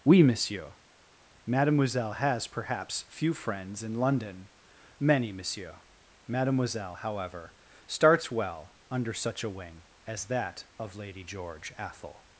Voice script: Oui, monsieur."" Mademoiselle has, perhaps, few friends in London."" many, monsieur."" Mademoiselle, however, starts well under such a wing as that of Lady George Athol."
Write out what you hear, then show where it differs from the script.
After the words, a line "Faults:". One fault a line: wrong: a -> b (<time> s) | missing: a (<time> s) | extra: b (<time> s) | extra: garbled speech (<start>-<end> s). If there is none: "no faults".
Oui, monsieur."" Mademoiselle has, perhaps, few friends in London."" many, monsieur."" Mademoiselle, however, starts well under such a wing as that of Lady George Athol."
Faults:
no faults